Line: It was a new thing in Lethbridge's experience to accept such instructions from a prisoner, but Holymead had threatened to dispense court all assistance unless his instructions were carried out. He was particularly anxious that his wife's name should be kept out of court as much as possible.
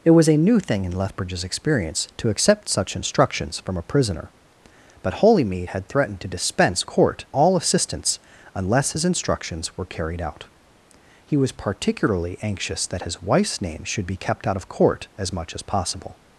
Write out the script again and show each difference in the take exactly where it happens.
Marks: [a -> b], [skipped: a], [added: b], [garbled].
It was a new thing in Lethbridge's experience to accept such instructions from a prisoner, but Holymead had threatened to dispense court all assistance unless his instructions were carried out. He was particularly anxious that his wife's name should be kept out of court as much as possible.